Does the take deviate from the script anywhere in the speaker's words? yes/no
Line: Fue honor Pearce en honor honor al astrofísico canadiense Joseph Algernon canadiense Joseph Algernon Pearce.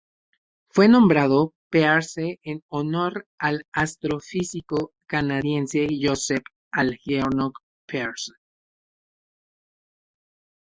yes